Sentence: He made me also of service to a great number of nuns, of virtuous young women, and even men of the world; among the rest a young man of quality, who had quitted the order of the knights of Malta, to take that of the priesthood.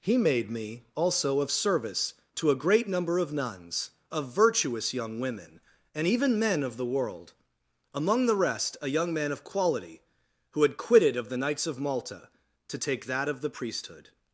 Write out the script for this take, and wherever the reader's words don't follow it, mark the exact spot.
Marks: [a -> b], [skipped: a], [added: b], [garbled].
He made me also of service to a great number of nuns, of virtuous young women, and even men of the world; among the rest a young man of quality, who had quitted [skipped: the order] of the knights of Malta, to take that of the priesthood.